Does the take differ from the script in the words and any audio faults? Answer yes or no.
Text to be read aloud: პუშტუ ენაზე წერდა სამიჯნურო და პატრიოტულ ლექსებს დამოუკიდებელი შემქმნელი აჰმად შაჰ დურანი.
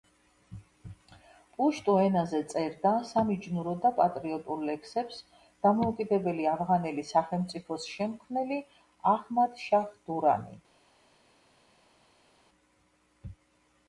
yes